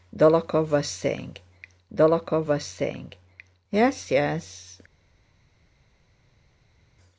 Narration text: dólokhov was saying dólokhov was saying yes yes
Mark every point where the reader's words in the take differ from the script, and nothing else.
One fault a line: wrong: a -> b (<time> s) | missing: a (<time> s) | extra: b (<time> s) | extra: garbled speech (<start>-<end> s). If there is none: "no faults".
no faults